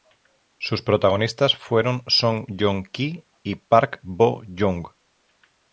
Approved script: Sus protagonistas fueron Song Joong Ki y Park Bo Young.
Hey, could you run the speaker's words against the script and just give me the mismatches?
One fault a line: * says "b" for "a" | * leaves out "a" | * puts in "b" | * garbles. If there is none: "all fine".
all fine